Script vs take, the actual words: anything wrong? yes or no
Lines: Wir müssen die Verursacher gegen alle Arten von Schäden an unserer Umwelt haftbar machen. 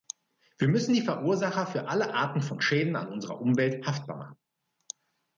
yes